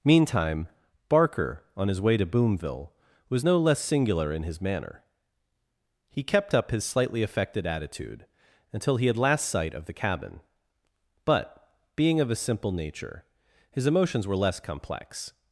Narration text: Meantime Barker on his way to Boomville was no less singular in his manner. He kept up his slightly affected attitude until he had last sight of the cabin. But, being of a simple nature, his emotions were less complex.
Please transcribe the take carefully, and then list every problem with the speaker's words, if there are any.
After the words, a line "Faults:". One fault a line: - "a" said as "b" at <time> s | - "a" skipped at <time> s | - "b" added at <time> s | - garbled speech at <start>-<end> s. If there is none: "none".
Meantime Barker on his way to Boomville was no less singular in his manner. He kept up his slightly affected attitude until he had last sight of the cabin. But, being of a simple nature, his emotions were less complex.
Faults:
none